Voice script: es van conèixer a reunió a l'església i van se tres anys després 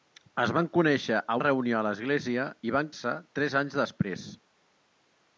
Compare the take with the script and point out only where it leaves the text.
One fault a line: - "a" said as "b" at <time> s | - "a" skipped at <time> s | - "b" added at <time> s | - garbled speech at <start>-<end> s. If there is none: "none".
none